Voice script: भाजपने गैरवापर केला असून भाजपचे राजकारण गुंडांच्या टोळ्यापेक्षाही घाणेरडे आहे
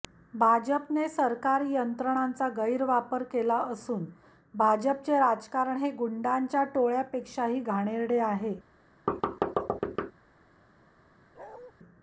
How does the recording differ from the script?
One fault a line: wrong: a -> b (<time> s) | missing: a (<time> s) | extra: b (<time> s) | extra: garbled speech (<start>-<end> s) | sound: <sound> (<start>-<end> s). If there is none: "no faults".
extra: सरकारी यंत्रणांचा (1.1 s)
extra: हे (5.8 s)
sound: thud (9.1-10.1 s)
sound: bark (11.4-11.7 s)